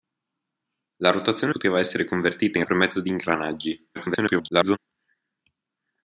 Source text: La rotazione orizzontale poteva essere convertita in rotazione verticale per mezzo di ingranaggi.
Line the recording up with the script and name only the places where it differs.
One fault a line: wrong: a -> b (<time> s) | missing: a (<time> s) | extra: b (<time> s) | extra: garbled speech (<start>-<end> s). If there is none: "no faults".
missing: orizzontale (1.5 s)
missing: rotazione verticale (2.6 s)
extra: garbled speech (3.9-4.8 s)